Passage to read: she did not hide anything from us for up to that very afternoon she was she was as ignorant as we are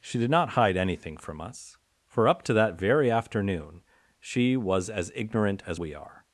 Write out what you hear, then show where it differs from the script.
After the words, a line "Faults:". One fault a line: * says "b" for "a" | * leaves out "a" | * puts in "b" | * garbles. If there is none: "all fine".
she did not hide anything from us for up to that very afternoon she was as ignorant as we are
Faults:
* leaves out "she was"